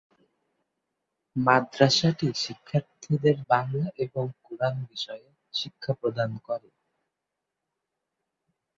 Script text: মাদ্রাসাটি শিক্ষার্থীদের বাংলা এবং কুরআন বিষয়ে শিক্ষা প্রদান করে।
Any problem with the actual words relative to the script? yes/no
no